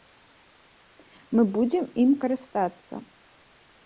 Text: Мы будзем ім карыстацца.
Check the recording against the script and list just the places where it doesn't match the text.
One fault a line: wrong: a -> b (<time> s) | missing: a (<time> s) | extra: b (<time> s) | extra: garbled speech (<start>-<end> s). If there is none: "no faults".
no faults